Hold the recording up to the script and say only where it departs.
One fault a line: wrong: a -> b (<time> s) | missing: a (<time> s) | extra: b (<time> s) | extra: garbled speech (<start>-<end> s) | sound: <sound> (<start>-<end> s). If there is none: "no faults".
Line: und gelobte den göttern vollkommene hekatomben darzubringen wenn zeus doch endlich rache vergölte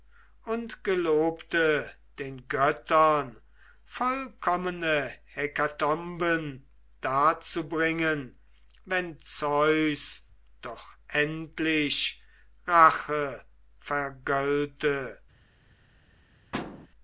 sound: thud (16.5-16.9 s)